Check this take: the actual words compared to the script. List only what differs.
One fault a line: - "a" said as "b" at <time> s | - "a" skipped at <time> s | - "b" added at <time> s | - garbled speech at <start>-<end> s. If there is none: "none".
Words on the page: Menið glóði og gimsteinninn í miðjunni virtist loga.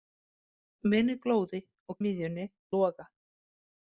- "gimsteinninn" skipped at 2.0 s
- "virtist" skipped at 2.5 s